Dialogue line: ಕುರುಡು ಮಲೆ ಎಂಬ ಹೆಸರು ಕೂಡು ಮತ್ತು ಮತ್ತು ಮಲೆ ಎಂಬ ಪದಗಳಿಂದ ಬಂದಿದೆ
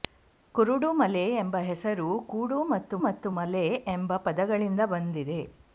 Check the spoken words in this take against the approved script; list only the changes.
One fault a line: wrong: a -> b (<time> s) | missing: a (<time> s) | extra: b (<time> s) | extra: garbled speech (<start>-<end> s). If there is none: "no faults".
no faults